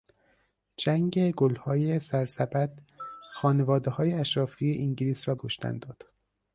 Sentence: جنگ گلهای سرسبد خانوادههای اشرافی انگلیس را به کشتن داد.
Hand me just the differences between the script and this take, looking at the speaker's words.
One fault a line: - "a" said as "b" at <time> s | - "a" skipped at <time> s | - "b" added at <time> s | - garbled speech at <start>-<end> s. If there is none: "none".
- "به" skipped at 5.3 s